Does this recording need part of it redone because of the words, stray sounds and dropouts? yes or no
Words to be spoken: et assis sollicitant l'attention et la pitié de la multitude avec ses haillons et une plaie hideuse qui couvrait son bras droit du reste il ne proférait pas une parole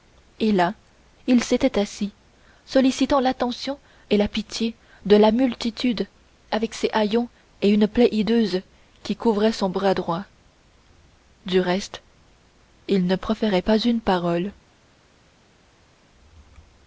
yes